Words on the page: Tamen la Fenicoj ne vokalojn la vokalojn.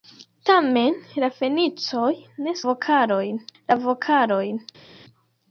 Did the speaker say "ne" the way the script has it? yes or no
yes